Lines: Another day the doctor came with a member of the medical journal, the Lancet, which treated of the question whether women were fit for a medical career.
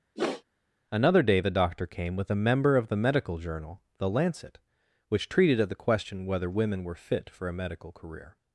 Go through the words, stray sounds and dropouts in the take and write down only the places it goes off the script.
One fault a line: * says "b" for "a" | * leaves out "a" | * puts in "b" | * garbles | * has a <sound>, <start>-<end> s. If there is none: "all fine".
* has a sniff, 0.2-0.4 s